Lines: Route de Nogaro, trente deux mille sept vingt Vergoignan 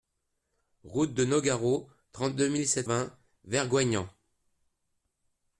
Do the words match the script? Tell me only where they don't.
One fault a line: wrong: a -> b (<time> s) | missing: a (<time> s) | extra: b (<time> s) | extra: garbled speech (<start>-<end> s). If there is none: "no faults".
no faults